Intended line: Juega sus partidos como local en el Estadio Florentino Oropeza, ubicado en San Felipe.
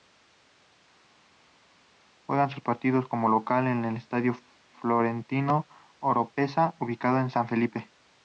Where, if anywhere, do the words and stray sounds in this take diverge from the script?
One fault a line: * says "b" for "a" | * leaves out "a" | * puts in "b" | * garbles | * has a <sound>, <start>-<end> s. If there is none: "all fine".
all fine